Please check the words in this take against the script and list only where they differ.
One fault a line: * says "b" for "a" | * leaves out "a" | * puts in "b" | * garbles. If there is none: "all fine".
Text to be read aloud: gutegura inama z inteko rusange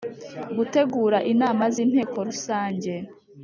all fine